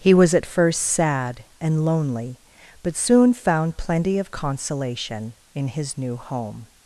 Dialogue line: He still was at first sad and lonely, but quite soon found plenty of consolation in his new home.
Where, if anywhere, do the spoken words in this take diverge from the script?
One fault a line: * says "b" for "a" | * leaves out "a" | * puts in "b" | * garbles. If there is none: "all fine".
* leaves out "still"
* leaves out "quite"